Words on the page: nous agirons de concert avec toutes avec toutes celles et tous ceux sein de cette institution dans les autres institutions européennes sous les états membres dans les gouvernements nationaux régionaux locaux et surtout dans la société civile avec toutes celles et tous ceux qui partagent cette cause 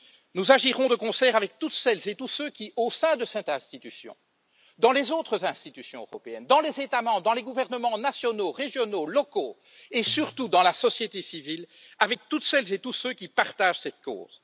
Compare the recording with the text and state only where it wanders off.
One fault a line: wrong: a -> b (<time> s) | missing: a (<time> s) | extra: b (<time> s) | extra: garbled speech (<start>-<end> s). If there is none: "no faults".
missing: avec toutes (1.7 s)
extra: qui au (2.5 s)
wrong: sous -> dans (6.5 s)